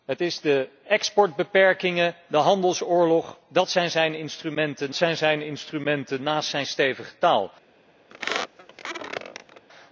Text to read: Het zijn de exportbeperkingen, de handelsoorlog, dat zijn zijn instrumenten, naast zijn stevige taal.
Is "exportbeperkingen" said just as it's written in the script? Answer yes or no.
yes